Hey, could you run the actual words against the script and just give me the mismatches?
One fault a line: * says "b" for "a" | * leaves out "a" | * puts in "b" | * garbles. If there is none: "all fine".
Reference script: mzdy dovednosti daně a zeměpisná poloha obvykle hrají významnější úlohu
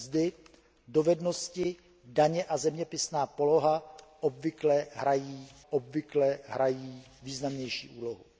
* puts in "obvykle hrají"